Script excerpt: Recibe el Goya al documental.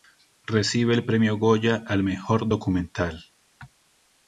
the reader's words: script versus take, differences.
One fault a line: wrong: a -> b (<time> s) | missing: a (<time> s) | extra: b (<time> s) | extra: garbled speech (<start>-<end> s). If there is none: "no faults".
extra: Premio (1.1 s)
extra: mejor (2.0 s)